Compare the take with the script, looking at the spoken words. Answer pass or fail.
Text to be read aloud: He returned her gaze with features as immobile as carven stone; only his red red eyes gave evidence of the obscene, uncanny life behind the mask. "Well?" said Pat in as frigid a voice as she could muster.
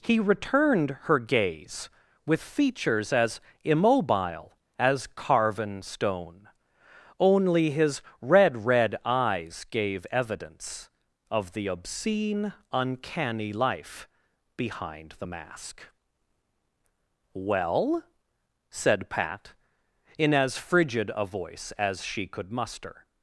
pass